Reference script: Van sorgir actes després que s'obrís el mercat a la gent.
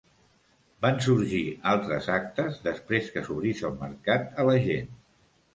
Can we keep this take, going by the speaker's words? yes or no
no